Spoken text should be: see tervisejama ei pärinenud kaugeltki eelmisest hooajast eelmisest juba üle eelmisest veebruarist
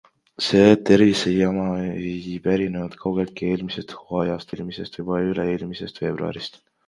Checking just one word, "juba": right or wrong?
right